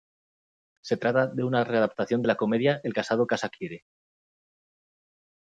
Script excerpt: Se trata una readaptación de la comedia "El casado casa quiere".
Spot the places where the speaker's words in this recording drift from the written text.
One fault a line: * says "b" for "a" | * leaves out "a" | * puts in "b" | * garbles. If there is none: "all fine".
* puts in "de"